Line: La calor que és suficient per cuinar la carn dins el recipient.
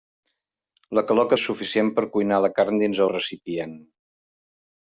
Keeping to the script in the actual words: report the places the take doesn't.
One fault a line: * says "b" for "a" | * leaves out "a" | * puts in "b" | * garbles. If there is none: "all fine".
all fine